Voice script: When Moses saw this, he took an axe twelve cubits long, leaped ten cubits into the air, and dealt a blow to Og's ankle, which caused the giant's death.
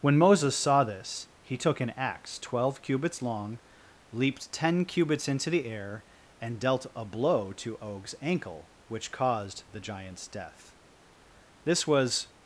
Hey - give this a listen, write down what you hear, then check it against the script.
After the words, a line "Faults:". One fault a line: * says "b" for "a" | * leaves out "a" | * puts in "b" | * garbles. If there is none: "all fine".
When Moses saw this, he took an axe twelve cubits long, leaped ten cubits into the air, and dealt a blow to Og's ankle, which caused the giant's death. This was
Faults:
* puts in "This was"